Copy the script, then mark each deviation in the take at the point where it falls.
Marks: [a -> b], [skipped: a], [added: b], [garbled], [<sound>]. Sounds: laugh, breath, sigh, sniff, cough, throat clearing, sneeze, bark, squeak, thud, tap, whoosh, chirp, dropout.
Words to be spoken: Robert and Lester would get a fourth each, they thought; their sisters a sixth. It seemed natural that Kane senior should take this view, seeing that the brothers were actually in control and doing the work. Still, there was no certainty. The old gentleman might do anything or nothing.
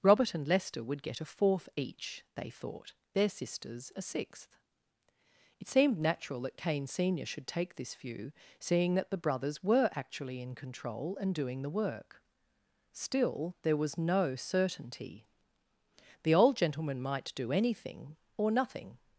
Robert and Lester would get a fourth each, they thought; their sisters a sixth. It seemed natural that Kane senior should take this view, seeing that the brothers were actually in control and doing the work. Still, there was no certainty. The old gentleman might do anything or nothing.